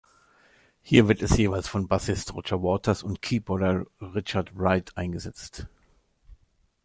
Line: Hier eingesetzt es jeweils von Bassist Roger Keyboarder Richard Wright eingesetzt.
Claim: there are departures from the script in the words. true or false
true